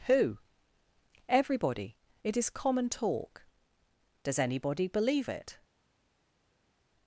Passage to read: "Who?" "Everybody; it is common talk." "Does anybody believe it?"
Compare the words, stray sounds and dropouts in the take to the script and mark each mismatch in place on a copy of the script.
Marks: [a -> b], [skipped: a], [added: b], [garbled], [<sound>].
"Who?" "Everybody; it is common talk." "Does anybody believe it?"